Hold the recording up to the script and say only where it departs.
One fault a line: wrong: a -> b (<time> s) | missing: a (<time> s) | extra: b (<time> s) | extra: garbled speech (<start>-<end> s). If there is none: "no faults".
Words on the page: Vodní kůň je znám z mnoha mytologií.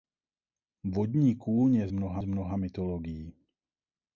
wrong: znám -> mnoha (1.9 s)